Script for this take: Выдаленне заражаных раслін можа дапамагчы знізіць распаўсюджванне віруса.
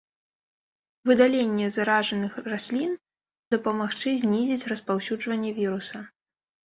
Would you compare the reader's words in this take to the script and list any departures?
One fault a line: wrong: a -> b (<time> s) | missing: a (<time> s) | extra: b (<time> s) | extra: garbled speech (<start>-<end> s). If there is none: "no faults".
missing: можа (3.0 s)